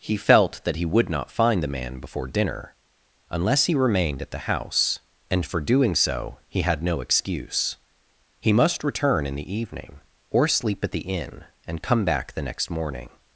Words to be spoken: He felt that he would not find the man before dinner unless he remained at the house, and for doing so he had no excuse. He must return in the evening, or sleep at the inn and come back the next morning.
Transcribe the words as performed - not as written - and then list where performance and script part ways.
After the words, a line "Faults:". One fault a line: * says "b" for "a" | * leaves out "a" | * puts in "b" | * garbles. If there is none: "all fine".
He felt that he would not find the man before dinner unless he remained at the house, and for doing so he had no excuse. He must return in the evening, or sleep at the inn and come back the next morning.
Faults:
all fine